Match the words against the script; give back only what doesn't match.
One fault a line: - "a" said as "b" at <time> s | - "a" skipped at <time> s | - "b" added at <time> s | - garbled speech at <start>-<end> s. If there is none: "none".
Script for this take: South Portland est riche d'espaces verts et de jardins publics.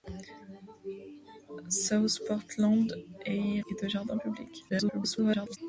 - "riche d'espaces verts" skipped at 3.6 s
- garbled speech at 4.7-5.6 s